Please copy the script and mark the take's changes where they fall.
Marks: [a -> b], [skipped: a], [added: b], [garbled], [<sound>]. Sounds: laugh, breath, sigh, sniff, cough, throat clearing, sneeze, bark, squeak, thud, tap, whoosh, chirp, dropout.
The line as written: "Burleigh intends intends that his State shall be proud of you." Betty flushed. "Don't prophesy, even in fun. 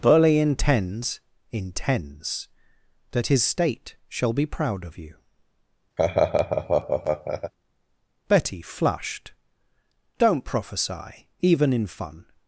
"Burleigh intends intends that his State shall be proud of you." [laugh] Betty flushed. "Don't prophesy, even in fun.